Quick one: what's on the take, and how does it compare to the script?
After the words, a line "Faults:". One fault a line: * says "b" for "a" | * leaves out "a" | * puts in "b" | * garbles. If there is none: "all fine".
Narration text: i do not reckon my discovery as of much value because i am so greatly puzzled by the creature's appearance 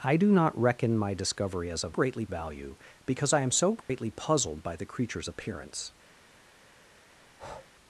i do not reckon my discovery as of greatly value because i am so greatly puzzled by the creature's appearance
Faults:
* says "greatly" for "much"